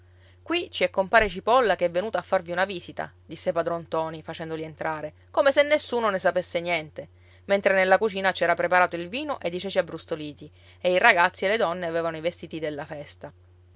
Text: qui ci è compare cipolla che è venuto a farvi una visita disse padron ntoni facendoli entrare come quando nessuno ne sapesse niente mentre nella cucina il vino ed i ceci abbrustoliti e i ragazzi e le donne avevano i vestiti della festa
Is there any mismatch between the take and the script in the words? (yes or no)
yes